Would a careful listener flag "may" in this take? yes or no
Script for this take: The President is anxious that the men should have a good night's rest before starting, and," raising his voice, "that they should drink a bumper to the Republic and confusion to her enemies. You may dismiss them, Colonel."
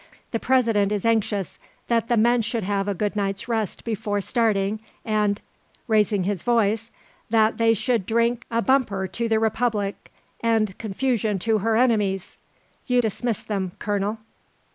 yes